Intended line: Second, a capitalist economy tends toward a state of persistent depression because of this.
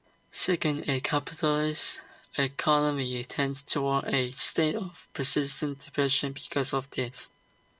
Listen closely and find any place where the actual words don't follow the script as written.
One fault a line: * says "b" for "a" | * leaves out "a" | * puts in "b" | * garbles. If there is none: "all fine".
all fine